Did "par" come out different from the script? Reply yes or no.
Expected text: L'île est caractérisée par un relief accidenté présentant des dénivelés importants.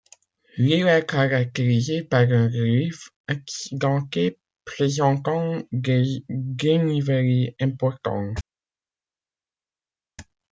no